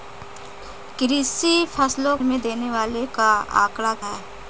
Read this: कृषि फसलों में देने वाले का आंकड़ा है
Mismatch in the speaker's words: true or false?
false